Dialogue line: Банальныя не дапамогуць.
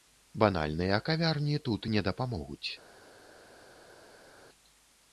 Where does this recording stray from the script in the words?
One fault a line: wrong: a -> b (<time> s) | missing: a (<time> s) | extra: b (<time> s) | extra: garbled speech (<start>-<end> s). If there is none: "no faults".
extra: кавярні тут (1.1 s)